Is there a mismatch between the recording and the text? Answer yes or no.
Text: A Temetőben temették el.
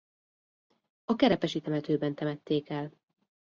yes